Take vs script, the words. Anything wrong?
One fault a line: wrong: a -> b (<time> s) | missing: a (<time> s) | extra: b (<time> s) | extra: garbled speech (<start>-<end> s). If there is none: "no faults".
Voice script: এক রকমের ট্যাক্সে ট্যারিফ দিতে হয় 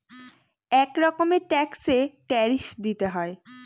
no faults